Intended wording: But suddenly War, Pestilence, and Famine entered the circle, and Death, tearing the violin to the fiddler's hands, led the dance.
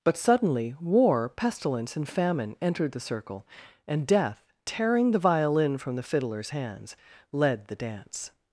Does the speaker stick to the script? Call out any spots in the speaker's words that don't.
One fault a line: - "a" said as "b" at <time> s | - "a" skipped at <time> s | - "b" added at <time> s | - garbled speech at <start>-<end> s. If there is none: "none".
- "to" said as "from" at 5.8 s